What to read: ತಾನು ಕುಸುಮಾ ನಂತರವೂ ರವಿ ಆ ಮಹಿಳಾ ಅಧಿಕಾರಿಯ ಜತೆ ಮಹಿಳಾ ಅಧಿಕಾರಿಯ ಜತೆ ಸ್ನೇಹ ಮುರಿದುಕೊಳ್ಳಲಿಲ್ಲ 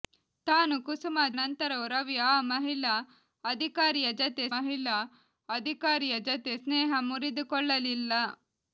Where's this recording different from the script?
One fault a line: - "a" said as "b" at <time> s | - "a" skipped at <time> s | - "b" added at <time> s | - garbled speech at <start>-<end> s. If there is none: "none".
none